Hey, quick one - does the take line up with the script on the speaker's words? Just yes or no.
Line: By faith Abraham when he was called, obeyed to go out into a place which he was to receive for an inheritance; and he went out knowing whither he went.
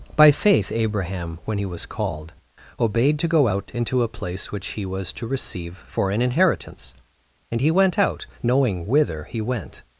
yes